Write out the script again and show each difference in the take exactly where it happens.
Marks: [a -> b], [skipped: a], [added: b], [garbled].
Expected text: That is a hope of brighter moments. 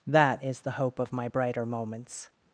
That is [a -> the] hope of [added: my] brighter moments.